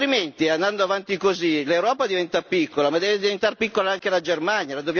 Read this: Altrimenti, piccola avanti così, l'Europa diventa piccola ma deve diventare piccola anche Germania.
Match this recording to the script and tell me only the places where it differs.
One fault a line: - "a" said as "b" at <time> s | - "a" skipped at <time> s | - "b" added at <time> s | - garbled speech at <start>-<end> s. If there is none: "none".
- "piccola" said as "andando" at 0.5 s
- "la" added at 4.1 s